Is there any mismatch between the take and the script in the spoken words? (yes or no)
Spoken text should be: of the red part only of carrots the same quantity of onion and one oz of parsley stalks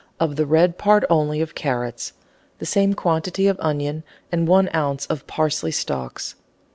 no